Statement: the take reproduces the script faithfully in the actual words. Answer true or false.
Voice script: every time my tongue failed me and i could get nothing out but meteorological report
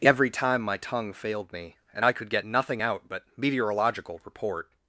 true